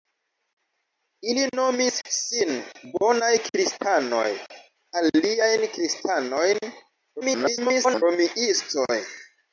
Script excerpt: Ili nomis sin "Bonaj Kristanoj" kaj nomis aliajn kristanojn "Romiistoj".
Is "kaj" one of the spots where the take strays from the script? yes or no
yes